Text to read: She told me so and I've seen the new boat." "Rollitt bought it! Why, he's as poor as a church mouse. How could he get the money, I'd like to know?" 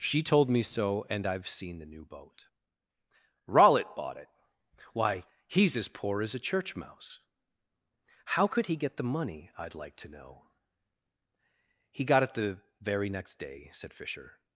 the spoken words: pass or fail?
fail